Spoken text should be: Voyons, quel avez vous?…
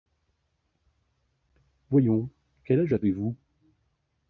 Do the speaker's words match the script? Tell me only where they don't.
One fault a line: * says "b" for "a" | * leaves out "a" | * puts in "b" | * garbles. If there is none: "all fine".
* puts in "âge"